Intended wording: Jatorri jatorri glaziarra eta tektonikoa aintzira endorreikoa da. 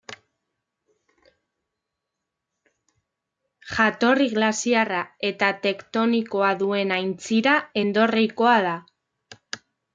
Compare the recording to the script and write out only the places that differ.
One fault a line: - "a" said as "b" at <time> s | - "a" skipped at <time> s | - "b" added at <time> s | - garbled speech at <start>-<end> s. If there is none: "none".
- "jatorri" skipped at 4.3 s
- "duen" added at 6.7 s